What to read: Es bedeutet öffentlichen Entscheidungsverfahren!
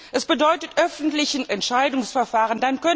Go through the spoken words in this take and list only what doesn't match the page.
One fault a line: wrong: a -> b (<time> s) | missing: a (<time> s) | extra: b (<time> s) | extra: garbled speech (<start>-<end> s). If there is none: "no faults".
no faults